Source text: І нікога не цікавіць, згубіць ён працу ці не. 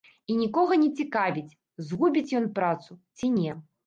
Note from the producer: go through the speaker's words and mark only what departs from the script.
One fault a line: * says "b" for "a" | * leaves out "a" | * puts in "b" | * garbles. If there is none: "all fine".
all fine